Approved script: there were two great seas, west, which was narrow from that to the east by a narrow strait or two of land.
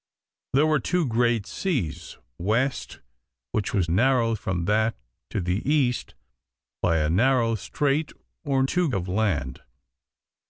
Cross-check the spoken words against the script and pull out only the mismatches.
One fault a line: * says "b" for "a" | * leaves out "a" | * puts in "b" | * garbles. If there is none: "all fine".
all fine